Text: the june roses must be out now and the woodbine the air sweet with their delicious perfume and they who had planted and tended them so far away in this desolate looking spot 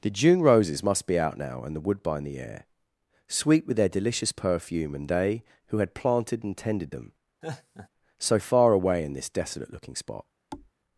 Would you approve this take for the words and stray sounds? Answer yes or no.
no